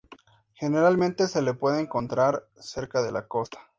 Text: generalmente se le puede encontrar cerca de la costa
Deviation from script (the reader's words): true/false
false